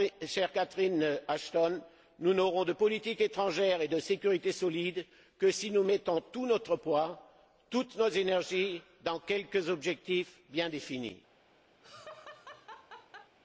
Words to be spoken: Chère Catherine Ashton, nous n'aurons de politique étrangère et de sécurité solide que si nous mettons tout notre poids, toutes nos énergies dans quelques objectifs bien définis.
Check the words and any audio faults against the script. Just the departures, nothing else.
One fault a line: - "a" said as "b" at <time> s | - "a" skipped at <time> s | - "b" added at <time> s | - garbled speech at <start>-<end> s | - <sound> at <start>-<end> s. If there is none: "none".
- laugh at 11.8-13.4 s